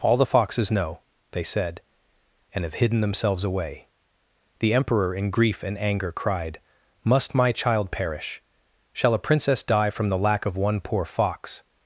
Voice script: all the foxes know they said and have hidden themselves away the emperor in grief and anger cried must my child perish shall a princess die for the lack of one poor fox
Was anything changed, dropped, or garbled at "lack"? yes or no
no